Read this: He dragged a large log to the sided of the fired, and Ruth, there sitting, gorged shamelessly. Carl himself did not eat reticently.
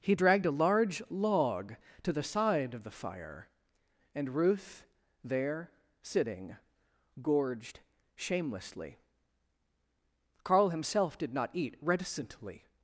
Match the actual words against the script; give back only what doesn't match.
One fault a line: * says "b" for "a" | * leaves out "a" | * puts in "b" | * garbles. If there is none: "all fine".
* says "side" for "sided"
* says "fire" for "fired"